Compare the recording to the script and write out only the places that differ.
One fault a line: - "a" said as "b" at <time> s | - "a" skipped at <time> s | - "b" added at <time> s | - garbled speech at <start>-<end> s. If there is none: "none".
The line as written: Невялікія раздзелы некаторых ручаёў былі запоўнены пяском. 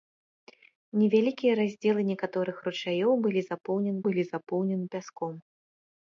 - "былі запоўнены" added at 4.1 s